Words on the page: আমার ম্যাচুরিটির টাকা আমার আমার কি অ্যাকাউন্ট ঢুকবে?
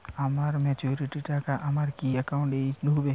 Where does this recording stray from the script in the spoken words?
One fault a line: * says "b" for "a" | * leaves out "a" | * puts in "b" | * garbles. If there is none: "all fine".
* leaves out "আমার"
* puts in "এই"